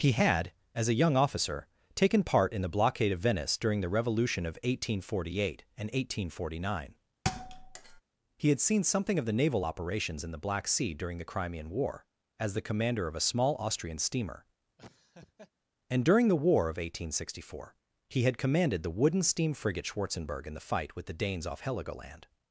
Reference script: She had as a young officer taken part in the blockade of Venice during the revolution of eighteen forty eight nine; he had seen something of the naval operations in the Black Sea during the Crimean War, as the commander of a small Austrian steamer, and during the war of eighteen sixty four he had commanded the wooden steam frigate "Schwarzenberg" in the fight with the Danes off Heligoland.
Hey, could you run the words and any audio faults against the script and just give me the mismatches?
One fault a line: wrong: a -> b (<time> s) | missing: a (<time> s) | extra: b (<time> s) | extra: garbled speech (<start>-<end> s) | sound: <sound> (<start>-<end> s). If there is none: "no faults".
wrong: She -> He (0.0 s)
extra: and eighteen forty (5.8 s)
sound: thud (7.2-8.0 s)
sound: laugh (14.8-15.5 s)